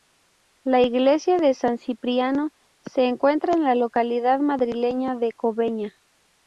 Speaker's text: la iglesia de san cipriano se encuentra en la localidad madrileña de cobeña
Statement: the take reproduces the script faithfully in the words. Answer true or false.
true